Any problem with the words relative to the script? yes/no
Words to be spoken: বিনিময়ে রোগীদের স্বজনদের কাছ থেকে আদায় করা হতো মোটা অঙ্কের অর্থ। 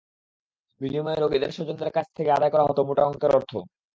no